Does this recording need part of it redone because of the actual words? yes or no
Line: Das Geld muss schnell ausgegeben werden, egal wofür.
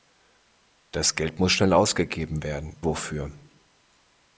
yes